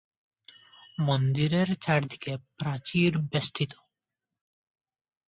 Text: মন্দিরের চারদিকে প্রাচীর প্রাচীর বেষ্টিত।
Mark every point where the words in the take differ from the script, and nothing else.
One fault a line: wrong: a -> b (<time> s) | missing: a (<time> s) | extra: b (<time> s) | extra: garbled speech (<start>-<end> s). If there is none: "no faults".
missing: প্রাচীর (3.1 s)